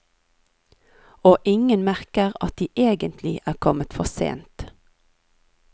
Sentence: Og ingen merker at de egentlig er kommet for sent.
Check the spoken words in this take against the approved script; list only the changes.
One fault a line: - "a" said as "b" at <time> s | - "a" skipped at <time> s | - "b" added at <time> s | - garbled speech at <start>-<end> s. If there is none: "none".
none